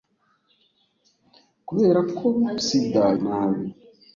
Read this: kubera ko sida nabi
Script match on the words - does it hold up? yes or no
yes